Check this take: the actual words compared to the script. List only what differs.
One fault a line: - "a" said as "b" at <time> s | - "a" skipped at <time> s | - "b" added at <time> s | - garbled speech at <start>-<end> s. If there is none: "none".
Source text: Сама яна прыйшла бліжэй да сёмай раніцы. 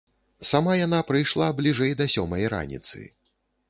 none